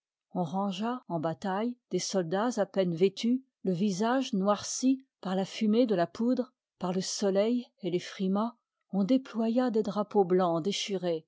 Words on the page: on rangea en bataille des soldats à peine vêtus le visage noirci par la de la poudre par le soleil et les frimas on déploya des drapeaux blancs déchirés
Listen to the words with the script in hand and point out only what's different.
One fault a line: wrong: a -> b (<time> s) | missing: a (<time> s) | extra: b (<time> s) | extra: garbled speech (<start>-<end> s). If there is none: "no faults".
extra: fumée (5.4 s)